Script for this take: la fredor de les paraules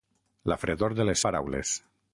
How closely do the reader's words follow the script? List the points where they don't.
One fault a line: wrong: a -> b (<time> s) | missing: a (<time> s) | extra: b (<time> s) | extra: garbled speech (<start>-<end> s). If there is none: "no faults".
no faults